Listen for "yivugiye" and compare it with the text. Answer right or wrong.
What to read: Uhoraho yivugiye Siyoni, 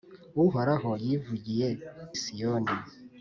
right